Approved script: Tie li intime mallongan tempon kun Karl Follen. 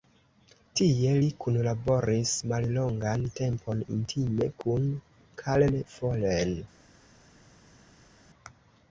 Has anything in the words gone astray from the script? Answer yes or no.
yes